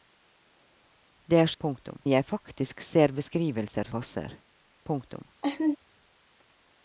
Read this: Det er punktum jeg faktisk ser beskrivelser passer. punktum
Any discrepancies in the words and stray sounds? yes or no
yes